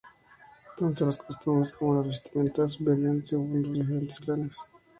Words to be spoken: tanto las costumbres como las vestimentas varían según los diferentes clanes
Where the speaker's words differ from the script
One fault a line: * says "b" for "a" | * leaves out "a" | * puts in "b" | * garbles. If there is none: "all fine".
all fine